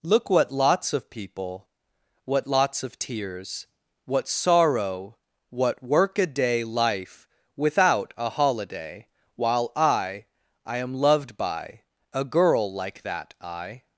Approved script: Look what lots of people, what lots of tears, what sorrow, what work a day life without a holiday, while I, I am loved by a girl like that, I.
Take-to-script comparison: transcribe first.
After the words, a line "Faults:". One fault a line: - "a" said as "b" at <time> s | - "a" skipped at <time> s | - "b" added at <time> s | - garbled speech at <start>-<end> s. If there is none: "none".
Look what lots of people, what lots of tears, what sorrow, what work a day life without a holiday, while I, I am loved by a girl like that, I.
Faults:
none